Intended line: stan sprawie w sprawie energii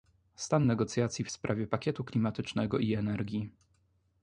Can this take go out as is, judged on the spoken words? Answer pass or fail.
fail